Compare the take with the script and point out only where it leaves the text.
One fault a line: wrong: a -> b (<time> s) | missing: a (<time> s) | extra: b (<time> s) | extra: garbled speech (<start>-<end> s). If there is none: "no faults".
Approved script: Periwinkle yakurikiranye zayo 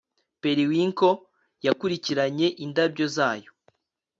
extra: indabyo (2.6 s)